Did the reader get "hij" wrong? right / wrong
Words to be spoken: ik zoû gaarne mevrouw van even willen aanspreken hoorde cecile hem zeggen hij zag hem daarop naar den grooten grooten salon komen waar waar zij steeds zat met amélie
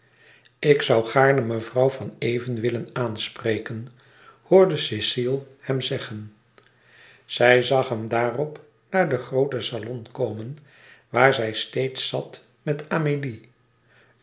wrong